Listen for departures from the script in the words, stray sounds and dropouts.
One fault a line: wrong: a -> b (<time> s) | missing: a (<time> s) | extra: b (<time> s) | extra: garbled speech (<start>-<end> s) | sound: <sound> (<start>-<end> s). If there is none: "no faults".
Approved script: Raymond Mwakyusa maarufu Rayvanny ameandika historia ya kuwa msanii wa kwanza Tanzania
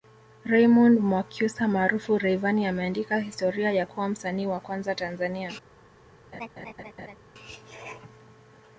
sound: laugh (6.3-7.2 s)